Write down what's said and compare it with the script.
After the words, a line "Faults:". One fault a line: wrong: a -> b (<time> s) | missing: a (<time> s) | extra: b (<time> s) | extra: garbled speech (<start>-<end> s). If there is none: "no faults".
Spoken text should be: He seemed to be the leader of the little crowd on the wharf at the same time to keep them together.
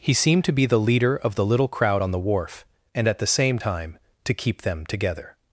He seemed to be the leader of the little crowd on the wharf and at the same time to keep them together.
Faults:
extra: and (2.9 s)